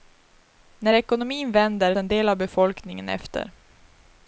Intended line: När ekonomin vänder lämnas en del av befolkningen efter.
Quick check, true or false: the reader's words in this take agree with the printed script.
false